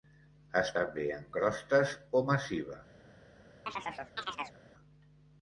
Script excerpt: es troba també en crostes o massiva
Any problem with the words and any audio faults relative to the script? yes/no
yes